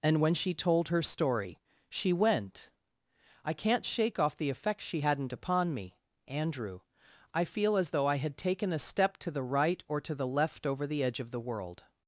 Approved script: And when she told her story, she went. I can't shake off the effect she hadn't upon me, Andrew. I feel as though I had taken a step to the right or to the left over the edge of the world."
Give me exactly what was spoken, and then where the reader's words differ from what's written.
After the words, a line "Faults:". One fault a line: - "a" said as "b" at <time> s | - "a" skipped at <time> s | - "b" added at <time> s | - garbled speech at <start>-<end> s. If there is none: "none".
And when she told her story, she went. I can't shake off the effect she hadn't upon me, Andrew. I feel as though I had taken a step to the right or to the left over the edge of the world."
Faults:
none